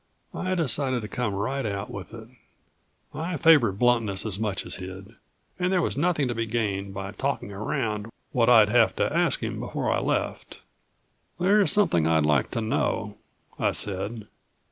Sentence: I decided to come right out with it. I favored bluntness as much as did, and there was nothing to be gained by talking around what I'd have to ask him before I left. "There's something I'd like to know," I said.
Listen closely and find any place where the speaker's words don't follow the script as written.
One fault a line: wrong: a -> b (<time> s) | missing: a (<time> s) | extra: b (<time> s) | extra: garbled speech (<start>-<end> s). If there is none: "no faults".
no faults